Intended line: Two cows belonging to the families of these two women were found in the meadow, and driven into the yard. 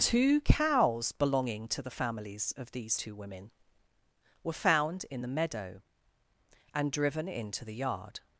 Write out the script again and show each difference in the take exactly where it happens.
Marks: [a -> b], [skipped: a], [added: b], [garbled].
Two cows belonging to the families of these two women were found in the meadow, and driven into the yard.